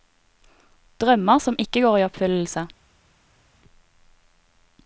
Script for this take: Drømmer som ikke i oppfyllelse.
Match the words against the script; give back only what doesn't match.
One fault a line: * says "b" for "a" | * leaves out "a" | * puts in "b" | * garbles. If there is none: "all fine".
* puts in "går"